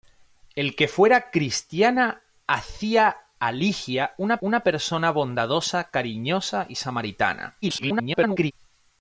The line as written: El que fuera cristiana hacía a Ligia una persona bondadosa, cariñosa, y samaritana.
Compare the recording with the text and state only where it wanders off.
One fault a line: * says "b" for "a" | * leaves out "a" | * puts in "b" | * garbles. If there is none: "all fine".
* puts in "una"
* garbles